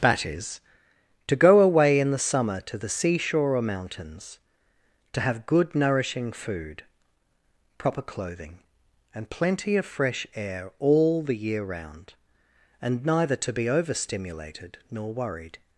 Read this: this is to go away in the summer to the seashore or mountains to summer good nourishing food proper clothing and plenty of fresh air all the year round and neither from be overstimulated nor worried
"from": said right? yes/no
no